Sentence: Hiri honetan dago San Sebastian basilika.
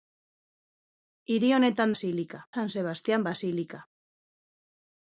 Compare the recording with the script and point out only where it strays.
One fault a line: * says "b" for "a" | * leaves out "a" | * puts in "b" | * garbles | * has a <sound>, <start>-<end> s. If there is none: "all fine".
* says "basilika" for "dago"